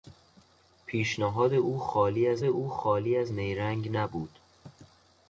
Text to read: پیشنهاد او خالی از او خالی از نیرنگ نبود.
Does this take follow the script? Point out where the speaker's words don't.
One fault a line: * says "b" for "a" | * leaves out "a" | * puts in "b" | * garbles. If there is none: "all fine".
all fine